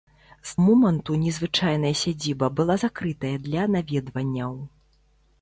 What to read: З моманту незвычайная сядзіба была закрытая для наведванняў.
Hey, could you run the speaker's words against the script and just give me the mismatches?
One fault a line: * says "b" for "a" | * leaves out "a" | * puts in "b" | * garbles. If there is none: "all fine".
all fine